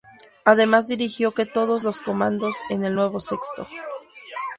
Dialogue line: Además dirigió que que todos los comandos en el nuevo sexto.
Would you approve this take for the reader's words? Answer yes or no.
no